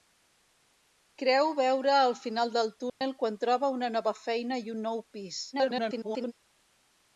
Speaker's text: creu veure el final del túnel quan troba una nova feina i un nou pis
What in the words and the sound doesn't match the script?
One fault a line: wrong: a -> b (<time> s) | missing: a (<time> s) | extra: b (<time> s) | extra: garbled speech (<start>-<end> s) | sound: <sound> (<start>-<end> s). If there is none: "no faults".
sound: dropout (2.9-3.0 s)
extra: garbled speech (5.5-6.3 s)